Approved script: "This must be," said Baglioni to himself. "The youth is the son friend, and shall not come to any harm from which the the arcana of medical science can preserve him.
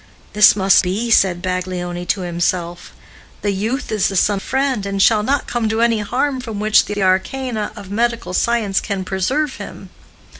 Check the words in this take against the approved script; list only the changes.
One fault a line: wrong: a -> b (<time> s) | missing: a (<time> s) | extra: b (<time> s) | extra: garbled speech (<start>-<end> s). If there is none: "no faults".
no faults